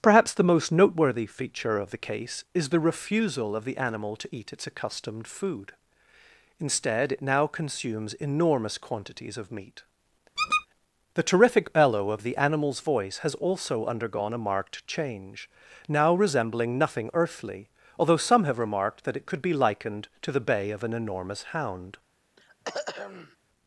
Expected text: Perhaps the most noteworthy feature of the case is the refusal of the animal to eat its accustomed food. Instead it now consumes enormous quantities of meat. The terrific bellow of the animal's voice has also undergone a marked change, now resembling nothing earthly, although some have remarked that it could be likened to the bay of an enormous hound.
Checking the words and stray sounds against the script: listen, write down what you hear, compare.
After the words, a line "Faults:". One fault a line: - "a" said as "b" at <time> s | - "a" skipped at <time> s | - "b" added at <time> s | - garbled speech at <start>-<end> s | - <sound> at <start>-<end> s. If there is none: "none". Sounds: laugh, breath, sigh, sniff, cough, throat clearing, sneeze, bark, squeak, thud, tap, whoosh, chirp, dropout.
Perhaps the most noteworthy feature of the case is the refusal of the animal to eat its accustomed food. Instead it now consumes enormous quantities of meat. The terrific bellow of the animal's voice has also undergone a marked change, now resembling nothing earthly, although some have remarked that it could be likened to the bay of an enormous hound.
Faults:
- squeak at 10.4-10.7 s
- throat clearing at 22.4-23.4 s